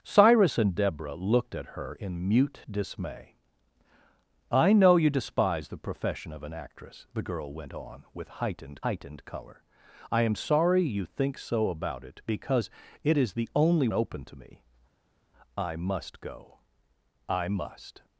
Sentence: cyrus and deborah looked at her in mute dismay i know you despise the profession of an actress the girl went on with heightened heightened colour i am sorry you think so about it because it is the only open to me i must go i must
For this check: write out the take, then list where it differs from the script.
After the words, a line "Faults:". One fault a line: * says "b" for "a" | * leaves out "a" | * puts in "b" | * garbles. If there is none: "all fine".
cyrus and deborah looked at her in mute dismay i know you despise the profession of an actress the girl went on with heightened heightened colour i am sorry you think so about it because it is the only open to me i must go i must
Faults:
all fine